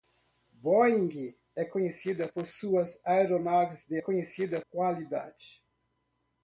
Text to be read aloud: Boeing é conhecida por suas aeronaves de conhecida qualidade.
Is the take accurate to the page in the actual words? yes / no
yes